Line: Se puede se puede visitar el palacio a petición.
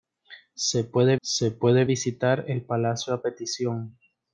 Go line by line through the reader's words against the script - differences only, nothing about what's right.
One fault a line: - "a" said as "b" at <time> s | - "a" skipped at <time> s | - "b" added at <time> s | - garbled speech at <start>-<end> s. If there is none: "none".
none